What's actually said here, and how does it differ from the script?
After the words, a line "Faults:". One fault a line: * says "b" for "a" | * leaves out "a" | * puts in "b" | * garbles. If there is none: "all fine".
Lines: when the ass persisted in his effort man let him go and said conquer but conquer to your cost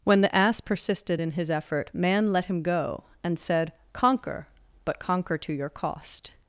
when the ass persisted in his effort man let him go and said conquer but conquer to your cost
Faults:
all fine